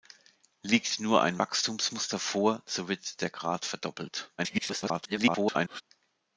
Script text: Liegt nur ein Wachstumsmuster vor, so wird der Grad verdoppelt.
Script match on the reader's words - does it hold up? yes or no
no